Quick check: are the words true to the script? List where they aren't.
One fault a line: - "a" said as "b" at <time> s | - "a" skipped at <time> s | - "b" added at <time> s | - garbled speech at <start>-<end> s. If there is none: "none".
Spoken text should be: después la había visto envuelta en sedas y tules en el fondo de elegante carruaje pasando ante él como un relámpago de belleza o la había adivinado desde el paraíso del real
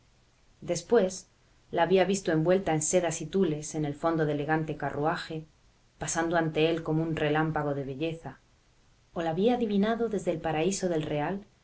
none